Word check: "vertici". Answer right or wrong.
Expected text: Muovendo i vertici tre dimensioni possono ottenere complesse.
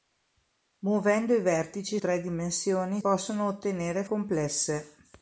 right